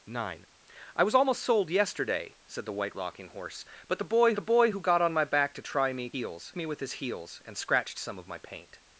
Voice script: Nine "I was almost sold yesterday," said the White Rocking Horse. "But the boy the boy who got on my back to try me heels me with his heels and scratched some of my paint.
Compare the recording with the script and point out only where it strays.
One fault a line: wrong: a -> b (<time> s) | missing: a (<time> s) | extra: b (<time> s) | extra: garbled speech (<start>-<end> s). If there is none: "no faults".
no faults